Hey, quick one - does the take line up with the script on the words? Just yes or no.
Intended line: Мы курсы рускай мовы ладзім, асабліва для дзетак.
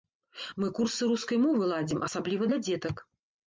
yes